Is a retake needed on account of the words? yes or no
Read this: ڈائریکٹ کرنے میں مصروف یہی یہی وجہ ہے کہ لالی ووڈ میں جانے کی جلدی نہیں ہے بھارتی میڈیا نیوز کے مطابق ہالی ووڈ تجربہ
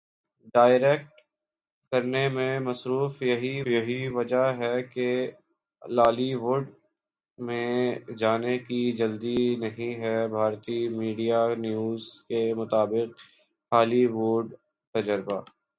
no